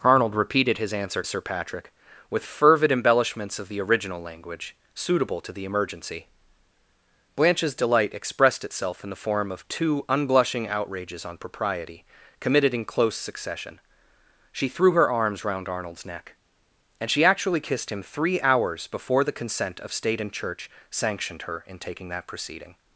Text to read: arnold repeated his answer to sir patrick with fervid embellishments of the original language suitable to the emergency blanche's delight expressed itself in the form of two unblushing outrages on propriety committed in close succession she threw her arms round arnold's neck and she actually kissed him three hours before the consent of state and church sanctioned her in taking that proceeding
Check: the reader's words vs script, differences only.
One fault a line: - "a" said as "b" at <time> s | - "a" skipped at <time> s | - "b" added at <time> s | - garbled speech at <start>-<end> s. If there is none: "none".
- "to" skipped at 1.2 s